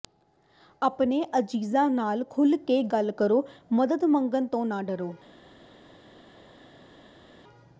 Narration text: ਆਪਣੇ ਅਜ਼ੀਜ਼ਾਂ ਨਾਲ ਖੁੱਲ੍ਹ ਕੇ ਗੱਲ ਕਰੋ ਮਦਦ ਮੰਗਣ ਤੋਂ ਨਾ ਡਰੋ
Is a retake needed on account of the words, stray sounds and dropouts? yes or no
no